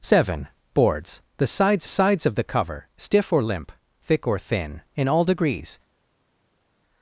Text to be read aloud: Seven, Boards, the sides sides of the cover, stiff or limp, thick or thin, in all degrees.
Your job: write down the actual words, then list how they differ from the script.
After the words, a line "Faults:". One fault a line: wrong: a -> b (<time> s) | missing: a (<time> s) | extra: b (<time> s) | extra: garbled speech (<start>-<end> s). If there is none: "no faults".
Seven, Boards, the sides sides of the cover, stiff or limp, thick or thin, in all degrees.
Faults:
no faults